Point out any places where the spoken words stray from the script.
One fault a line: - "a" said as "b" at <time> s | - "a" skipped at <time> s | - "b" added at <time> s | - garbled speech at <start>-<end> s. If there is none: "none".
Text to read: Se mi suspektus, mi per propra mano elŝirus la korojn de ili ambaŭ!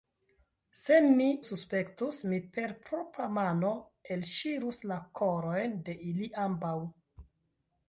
none